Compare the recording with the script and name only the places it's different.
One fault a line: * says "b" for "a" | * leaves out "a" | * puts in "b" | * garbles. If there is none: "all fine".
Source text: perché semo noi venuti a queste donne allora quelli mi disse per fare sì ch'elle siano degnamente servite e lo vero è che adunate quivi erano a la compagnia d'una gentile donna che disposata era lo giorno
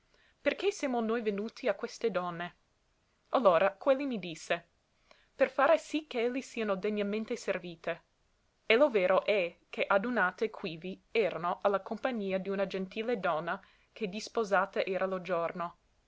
all fine